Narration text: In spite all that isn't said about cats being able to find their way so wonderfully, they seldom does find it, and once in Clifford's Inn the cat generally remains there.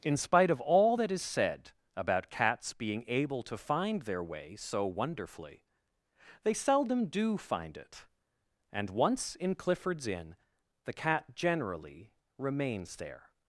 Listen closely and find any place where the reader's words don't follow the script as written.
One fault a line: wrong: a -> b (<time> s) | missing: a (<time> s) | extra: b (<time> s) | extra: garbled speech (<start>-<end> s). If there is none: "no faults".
extra: of (0.5 s)
wrong: isn't -> is (1.1 s)
wrong: does -> do (7.1 s)